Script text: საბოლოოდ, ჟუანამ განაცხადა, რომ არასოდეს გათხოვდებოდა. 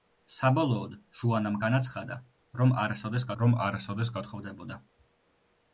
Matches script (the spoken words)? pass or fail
fail